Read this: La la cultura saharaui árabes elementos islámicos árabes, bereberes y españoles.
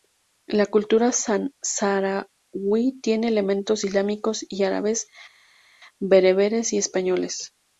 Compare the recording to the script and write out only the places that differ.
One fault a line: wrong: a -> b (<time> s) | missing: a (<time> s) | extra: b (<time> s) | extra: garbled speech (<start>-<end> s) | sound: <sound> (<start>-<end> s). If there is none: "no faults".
missing: la (0.7 s)
wrong: árabes -> tiene (3.0 s)
extra: y (4.5 s)